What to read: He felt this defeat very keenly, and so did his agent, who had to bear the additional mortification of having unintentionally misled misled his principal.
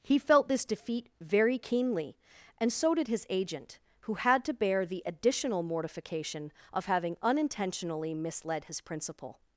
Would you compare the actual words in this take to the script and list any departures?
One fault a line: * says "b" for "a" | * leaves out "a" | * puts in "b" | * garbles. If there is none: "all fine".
* leaves out "misled"